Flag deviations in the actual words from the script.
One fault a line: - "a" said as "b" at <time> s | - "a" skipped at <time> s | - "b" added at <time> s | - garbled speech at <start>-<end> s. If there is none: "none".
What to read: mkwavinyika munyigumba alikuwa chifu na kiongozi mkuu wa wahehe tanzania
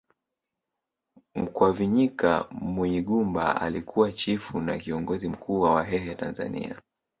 none